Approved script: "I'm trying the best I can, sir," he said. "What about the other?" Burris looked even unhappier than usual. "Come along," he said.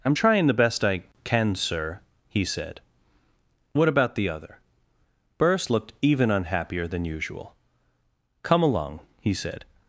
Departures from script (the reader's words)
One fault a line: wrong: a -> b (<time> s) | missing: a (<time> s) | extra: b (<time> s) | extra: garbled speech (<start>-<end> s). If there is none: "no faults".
no faults